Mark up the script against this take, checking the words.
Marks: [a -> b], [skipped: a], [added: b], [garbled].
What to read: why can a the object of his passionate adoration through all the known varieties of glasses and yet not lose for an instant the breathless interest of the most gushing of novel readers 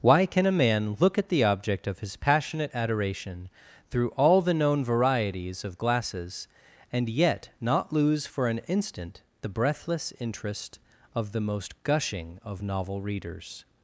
why can a [added: man look at] the object of his passionate adoration through all the known varieties of glasses and yet not lose for an instant the breathless interest of the most gushing of novel readers